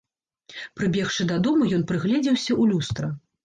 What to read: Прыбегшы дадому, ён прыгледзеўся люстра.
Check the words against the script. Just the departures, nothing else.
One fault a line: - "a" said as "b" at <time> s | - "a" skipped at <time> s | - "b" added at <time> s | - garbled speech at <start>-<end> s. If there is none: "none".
- "ў" added at 2.6 s